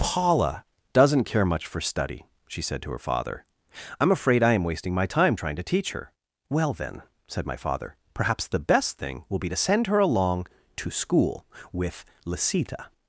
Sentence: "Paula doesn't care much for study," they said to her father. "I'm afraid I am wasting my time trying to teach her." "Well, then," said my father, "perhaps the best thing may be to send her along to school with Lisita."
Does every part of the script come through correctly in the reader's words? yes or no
no